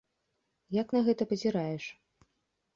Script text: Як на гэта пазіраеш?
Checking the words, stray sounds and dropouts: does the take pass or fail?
pass